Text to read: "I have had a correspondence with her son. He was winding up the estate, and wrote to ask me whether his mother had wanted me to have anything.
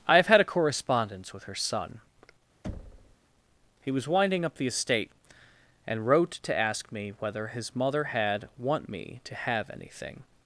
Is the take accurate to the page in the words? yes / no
no